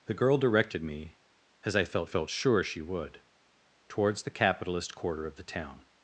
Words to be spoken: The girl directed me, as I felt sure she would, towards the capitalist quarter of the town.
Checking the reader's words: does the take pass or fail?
fail